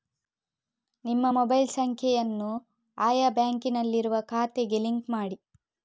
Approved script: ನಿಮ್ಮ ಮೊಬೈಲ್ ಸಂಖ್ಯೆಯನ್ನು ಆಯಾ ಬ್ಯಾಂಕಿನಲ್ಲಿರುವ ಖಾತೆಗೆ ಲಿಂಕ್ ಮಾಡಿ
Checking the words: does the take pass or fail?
pass